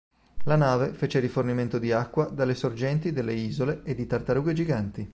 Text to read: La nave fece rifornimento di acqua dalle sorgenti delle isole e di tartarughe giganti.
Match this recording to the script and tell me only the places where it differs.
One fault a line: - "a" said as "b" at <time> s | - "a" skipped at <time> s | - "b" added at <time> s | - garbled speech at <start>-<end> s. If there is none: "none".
none